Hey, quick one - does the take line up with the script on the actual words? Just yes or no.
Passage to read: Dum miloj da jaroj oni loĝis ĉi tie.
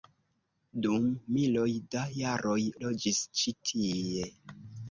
no